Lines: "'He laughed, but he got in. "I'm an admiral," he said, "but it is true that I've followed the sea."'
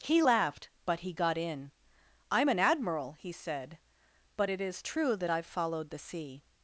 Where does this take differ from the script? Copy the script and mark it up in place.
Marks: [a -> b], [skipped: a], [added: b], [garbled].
"'He laughed, but he got in. "I'm an admiral," he said, "but it is true that I've followed the sea."'